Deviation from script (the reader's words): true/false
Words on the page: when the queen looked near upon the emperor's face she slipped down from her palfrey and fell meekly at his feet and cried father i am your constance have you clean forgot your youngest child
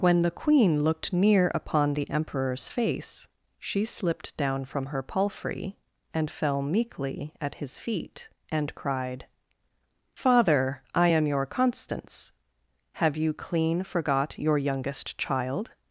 false